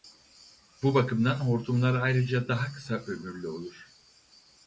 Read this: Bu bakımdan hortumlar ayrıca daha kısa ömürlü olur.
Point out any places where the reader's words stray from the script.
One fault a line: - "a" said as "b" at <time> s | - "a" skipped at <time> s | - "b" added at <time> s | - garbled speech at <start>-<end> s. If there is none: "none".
none